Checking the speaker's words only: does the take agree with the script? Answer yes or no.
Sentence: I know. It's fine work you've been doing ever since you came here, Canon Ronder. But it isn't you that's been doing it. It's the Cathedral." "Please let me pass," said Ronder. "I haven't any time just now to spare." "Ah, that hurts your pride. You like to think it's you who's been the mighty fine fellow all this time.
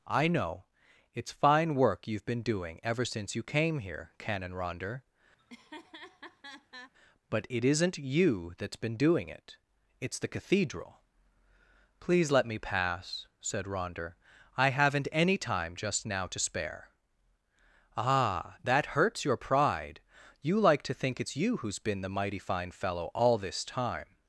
yes